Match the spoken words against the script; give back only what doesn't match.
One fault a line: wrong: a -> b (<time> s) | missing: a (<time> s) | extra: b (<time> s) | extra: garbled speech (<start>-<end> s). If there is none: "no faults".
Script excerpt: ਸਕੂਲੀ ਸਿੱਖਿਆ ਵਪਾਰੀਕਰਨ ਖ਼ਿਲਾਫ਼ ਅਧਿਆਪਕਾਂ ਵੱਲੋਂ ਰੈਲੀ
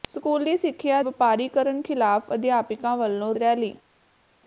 no faults